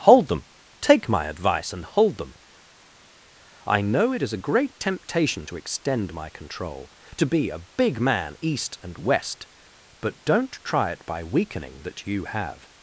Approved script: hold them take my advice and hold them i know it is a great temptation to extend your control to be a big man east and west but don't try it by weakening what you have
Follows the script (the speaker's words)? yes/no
no